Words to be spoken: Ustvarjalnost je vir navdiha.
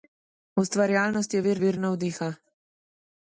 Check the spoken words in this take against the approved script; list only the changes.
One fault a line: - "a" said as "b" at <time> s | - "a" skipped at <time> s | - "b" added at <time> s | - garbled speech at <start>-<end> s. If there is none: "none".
- "vir" added at 1.6 s